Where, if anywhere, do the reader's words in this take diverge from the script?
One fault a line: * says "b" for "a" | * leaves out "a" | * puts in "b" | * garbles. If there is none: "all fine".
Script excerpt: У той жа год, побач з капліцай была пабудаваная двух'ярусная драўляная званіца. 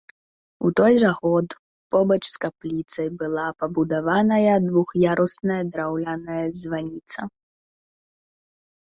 all fine